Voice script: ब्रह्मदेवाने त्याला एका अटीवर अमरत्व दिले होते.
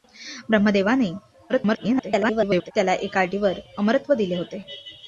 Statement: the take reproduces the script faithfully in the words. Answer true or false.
false